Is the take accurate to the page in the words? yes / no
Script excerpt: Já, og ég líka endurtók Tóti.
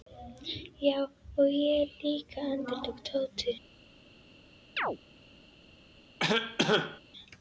yes